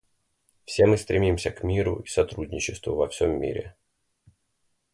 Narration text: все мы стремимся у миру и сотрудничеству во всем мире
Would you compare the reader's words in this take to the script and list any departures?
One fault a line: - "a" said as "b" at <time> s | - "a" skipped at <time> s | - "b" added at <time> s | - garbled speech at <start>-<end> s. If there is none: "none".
- "у" said as "к" at 1.5 s